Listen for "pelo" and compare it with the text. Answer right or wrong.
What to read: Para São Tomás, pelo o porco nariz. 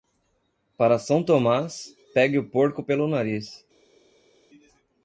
wrong